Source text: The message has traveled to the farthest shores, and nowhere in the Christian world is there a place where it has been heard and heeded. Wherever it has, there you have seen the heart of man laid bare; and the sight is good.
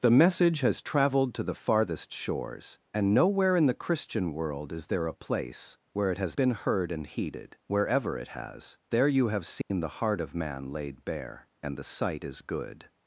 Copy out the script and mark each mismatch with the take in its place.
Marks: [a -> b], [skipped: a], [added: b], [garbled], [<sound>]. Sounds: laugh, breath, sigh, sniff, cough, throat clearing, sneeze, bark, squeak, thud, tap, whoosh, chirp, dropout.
The message has traveled to the farthest shores, and nowhere in the Christian world is there a place where it has been heard and heeded. Wherever it has, there you have seen [dropout] the heart of man laid bare; and the sight is good.